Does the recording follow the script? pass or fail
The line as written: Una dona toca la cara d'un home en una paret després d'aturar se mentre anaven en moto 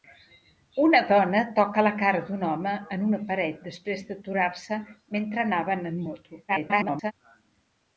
fail